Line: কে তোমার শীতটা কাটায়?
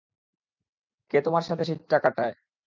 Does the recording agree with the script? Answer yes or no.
no